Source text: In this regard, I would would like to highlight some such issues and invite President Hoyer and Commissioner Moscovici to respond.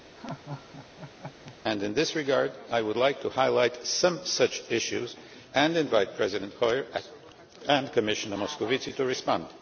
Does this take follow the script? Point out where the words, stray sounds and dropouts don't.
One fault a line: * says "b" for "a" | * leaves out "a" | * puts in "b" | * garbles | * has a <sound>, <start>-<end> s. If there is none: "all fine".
* has a laugh, 0.2-1.6 s
* leaves out "would"